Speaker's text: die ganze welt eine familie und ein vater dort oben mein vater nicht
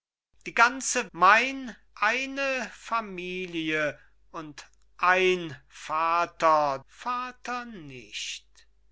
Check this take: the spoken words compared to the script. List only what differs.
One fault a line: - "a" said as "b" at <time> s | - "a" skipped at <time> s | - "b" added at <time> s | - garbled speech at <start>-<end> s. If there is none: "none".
- "welt" said as "mein" at 1.1 s
- "dort oben mein" skipped at 6.8 s